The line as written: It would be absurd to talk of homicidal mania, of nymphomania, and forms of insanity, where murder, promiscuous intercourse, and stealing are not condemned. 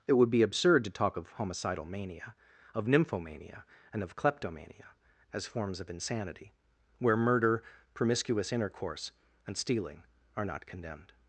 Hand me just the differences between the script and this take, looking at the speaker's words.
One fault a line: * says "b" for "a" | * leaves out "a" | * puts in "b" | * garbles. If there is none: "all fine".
* puts in "of kleptomania as"